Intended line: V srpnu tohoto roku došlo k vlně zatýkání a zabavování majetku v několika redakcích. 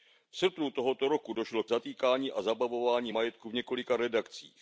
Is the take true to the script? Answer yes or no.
no